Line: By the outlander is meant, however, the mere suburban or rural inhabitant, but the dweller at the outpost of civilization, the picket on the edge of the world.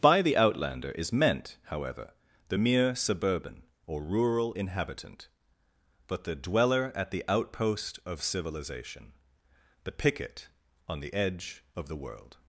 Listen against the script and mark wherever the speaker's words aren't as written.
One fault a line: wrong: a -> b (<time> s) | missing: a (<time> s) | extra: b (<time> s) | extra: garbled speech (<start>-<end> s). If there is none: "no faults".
no faults